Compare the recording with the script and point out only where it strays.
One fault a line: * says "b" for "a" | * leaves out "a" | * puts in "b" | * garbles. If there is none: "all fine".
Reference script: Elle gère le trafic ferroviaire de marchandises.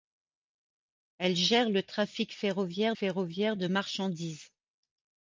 * puts in "ferroviaire"